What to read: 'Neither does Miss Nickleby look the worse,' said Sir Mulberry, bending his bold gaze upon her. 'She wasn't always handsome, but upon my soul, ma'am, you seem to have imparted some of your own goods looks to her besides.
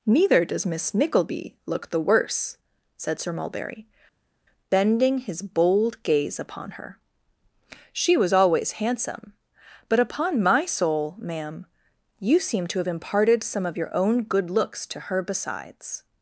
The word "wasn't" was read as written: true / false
false